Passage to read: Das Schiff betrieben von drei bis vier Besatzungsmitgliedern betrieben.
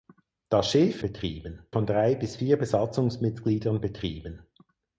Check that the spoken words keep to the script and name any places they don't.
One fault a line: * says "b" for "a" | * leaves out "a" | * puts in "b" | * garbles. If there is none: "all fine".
all fine